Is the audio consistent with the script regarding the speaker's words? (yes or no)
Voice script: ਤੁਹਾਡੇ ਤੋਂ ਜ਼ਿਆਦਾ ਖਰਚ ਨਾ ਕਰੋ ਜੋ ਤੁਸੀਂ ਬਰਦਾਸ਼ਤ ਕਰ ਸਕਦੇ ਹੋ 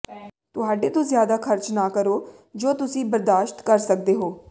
yes